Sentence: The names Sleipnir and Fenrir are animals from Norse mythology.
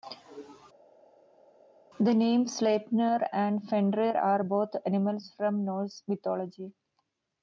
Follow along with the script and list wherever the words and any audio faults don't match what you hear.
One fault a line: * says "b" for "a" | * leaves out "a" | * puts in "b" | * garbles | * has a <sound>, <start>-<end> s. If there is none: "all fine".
* puts in "both"